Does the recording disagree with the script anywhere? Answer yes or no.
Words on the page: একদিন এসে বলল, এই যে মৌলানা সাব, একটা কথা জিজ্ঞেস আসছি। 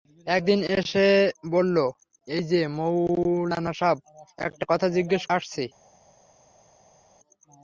no